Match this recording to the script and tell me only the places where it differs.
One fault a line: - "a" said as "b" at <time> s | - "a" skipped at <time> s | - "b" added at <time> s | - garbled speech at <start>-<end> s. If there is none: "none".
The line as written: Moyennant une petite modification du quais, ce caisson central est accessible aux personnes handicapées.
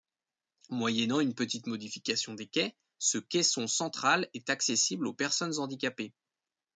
- "du" said as "des" at 2.3 s